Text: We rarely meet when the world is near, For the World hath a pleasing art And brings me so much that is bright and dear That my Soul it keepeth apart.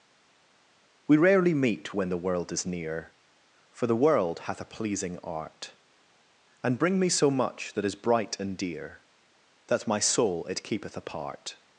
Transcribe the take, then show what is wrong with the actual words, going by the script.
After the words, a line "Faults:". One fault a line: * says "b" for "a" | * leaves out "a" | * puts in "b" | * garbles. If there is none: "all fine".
We rarely meet when the world is near, For the World hath a pleasing art And bring me so much that is bright and dear That my Soul it keepeth apart.
Faults:
* says "bring" for "brings"